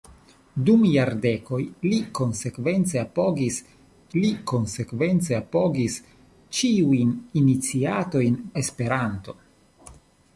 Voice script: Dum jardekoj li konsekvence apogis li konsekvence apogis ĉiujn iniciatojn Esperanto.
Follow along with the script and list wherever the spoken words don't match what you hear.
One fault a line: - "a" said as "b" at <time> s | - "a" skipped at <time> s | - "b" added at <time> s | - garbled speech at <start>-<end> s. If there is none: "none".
none